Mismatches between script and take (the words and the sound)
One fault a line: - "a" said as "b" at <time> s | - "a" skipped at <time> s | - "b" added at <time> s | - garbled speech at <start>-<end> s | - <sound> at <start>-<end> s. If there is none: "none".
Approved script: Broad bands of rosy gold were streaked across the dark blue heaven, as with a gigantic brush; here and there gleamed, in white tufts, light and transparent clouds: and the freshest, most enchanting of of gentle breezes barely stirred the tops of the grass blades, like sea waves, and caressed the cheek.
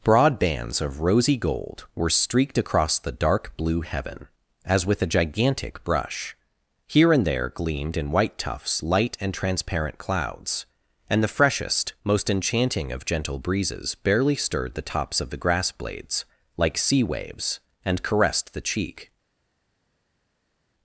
- "of" skipped at 13.1 s